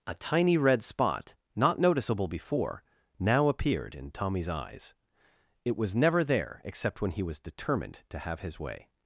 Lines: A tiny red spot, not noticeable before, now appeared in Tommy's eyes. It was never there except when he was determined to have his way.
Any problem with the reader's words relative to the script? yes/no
no